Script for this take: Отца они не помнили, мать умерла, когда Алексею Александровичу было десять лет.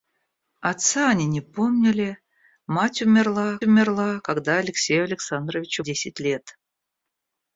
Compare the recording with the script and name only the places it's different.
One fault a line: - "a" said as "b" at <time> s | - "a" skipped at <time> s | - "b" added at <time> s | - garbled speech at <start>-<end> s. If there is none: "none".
- "умерла" added at 3.6 s
- "было" skipped at 5.8 s